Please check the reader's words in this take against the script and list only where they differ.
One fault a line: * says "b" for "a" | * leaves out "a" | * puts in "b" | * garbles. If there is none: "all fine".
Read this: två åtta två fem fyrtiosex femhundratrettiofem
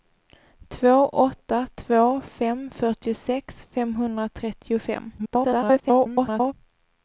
* garbles